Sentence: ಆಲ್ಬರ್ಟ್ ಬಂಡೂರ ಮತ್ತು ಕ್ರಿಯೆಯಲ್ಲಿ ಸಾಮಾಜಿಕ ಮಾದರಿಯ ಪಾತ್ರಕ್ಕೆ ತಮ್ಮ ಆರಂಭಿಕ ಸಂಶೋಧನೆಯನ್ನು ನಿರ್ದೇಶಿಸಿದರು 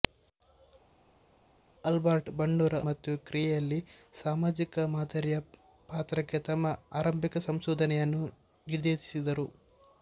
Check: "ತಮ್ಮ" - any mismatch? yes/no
no